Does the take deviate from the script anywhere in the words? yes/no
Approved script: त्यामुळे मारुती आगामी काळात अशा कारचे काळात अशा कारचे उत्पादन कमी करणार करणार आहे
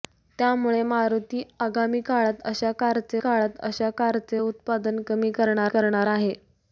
no